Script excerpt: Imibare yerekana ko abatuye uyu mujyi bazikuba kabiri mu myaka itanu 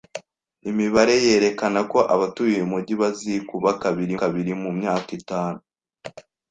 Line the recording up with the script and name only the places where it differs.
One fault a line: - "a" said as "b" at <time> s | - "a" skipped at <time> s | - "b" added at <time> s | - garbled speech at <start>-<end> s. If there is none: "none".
- "kabiri" added at 4.2 s